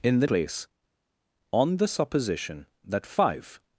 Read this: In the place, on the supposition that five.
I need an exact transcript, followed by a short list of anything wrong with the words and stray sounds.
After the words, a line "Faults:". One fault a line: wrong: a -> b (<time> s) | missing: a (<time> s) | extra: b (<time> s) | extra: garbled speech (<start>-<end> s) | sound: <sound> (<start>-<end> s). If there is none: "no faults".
In the place, on the supposition that five.
Faults:
no faults